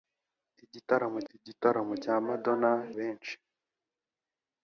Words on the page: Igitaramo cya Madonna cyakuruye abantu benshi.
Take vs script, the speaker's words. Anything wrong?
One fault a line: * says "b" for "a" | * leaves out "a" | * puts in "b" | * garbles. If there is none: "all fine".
* puts in "igitaramo"
* leaves out "cyakuruye abantu"